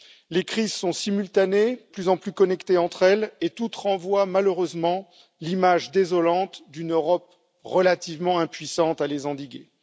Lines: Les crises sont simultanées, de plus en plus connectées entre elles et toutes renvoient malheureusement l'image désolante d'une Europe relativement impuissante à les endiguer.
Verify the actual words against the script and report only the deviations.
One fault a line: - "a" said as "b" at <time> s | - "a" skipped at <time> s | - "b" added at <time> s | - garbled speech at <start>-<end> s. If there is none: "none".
- "de" skipped at 1.8 s